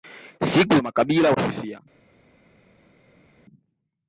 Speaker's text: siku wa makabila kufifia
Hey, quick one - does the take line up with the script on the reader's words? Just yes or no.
yes